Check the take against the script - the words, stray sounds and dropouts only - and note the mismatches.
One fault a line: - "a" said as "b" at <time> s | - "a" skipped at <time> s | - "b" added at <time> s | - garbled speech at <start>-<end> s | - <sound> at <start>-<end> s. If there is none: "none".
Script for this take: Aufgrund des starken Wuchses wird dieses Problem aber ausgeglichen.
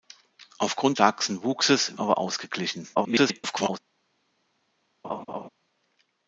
- "des" skipped at 1.0 s
- "wird dieses Problem" skipped at 2.0 s
- garbled speech at 2.9-3.8 s
- laugh at 5.0-5.5 s